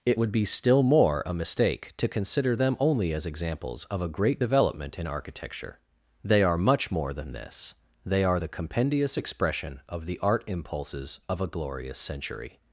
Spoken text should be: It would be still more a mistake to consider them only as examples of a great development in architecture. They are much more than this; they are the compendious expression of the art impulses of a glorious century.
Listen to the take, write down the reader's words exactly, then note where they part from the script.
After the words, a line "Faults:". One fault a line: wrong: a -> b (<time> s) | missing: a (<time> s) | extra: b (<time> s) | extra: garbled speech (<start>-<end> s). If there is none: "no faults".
It would be still more a mistake to consider them only as examples of a great development in architecture. They are much more than this; they are the compendious expression of the art impulses of a glorious century.
Faults:
no faults